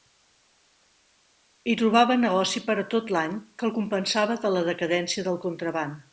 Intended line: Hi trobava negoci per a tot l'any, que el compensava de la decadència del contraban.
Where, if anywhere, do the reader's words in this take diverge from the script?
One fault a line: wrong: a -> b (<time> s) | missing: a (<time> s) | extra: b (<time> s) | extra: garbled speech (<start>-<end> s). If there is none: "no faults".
no faults